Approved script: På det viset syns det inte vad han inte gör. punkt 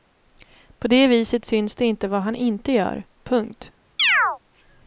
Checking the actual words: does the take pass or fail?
pass